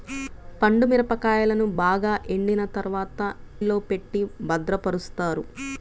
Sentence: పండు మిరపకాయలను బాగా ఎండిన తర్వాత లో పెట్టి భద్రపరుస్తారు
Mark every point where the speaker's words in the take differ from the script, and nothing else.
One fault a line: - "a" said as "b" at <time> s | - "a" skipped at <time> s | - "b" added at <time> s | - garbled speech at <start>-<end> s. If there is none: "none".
none